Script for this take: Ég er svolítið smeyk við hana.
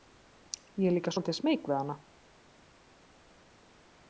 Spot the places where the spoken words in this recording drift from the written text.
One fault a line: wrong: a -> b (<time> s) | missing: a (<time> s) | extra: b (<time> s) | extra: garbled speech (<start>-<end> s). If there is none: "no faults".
extra: líka (0.9 s)